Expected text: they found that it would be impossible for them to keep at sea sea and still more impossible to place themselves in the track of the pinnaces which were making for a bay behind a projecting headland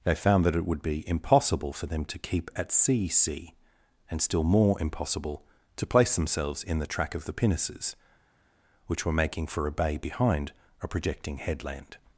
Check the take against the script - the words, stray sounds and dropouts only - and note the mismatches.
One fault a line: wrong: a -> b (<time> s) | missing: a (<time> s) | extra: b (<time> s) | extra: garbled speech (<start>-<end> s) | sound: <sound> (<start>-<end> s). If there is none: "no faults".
no faults